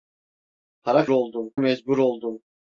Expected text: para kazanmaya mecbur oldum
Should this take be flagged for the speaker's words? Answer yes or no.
yes